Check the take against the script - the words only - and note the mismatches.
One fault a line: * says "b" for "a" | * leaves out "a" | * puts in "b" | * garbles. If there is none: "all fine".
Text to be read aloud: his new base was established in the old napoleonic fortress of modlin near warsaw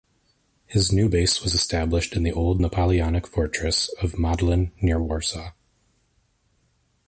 all fine